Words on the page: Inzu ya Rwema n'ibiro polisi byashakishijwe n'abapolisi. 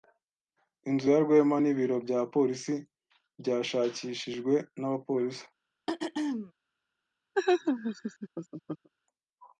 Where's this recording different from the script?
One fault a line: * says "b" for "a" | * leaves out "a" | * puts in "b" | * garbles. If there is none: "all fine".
* puts in "bya"